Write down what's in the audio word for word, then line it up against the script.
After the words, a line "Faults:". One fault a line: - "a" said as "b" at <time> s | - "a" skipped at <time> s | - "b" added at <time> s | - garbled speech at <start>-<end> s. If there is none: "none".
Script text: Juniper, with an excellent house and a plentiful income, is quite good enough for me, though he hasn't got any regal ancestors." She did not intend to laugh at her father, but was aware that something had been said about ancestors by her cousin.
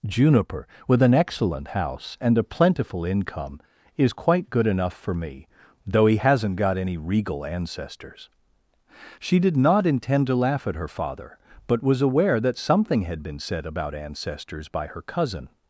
Juniper, with an excellent house and a plentiful income, is quite good enough for me, though he hasn't got any regal ancestors." She did not intend to laugh at her father, but was aware that something had been said about ancestors by her cousin.
Faults:
none